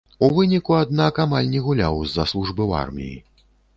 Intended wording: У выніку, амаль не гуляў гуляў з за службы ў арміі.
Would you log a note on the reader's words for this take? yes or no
yes